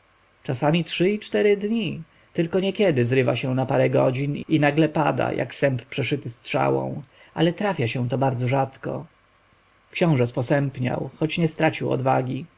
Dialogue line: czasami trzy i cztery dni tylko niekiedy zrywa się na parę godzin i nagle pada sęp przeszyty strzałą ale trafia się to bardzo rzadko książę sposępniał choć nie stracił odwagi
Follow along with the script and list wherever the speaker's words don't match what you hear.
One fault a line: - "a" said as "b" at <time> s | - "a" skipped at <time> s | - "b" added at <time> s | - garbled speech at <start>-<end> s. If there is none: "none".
- "jak" added at 5.3 s